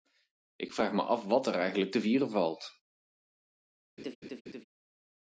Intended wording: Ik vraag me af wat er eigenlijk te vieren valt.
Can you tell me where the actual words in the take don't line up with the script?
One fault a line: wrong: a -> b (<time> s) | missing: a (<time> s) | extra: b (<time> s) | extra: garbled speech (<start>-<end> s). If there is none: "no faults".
no faults